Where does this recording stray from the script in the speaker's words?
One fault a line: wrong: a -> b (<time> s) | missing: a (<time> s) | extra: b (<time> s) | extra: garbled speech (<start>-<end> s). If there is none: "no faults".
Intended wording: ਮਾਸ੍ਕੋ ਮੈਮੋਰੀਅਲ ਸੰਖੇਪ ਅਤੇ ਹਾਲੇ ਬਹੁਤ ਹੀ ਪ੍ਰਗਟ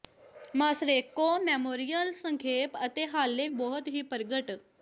no faults